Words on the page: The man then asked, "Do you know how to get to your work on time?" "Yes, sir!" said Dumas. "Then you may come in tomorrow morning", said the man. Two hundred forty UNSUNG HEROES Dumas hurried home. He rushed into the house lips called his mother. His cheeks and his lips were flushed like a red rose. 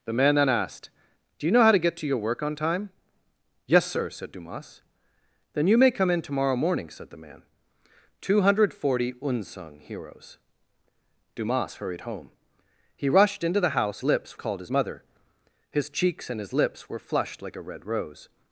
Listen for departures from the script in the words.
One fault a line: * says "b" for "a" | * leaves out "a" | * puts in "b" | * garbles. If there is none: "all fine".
all fine